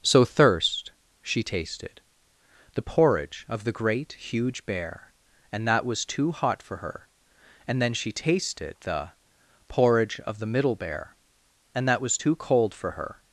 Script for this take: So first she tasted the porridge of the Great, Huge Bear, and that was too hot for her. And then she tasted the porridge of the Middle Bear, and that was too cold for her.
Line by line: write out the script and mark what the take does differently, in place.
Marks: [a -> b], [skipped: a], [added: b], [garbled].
So [first -> thirst] she tasted the porridge of the Great, Huge Bear, and that was too hot for her. And then she tasted the porridge of the Middle Bear, and that was too cold for her.